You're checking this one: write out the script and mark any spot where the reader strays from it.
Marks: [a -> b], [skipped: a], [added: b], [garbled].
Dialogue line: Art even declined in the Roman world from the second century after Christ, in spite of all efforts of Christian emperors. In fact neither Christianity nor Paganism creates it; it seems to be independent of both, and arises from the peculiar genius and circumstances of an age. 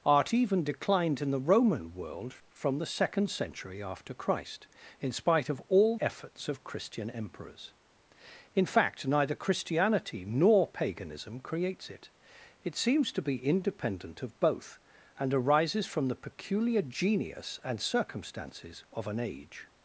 Art even declined in the Roman world from the second century after Christ, in spite of all efforts of Christian emperors. In fact neither Christianity nor Paganism creates it; it seems to be independent of both, and arises from the peculiar genius and circumstances of an age.